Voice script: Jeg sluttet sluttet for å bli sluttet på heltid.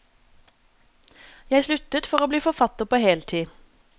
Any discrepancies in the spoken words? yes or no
yes